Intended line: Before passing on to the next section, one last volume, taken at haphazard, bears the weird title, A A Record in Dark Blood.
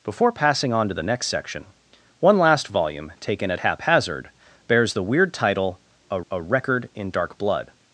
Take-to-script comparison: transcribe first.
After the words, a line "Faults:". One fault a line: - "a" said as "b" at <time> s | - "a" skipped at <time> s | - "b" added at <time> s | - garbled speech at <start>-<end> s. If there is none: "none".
Before passing on to the next section, one last volume, taken at haphazard, bears the weird title, A A Record in Dark Blood.
Faults:
none